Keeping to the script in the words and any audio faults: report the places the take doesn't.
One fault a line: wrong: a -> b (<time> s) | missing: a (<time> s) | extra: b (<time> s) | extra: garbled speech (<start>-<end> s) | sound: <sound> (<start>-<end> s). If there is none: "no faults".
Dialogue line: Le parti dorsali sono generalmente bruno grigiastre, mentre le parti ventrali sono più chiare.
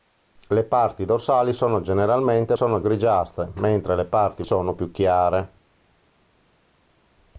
wrong: bruno -> sono (2.5 s)
missing: ventrali (4.4 s)